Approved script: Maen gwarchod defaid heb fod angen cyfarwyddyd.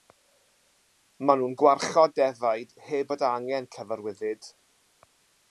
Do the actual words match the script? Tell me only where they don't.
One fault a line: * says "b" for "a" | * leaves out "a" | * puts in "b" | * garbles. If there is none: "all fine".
* puts in "nhw'n"